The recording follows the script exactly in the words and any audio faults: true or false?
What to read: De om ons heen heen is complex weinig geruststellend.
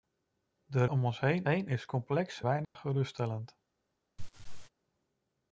false